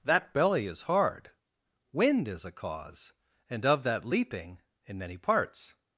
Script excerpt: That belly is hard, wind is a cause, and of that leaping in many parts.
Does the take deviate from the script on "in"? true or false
false